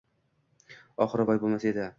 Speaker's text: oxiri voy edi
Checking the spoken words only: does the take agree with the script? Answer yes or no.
no